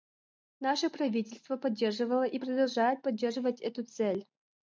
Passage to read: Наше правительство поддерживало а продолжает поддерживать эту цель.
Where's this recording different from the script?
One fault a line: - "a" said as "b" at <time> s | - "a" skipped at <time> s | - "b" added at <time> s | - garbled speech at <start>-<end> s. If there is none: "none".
- "а" said as "и" at 2.2 s